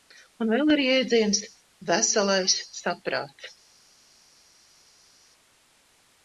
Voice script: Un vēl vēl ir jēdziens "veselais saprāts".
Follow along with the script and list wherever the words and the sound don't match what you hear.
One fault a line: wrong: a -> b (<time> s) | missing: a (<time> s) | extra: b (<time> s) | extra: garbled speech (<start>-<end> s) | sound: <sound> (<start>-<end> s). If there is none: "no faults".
missing: vēl (0.7 s)